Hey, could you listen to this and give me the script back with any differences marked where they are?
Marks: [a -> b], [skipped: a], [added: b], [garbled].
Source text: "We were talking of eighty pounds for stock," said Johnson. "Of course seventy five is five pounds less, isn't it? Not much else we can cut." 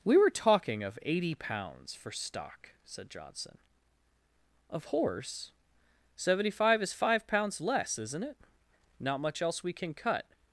"We were talking of eighty pounds for stock," said Johnson. "Of [course -> horse] seventy five is five pounds less, isn't it? Not much else we can cut."